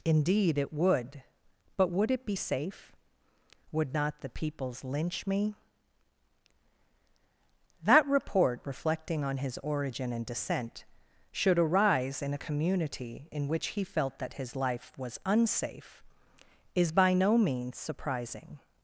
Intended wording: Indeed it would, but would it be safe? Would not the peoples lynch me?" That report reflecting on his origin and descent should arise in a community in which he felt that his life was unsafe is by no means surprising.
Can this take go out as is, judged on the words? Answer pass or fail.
pass